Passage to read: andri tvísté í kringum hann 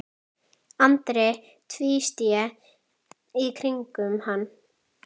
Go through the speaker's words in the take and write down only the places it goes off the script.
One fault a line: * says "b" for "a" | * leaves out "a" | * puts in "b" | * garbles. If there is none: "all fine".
all fine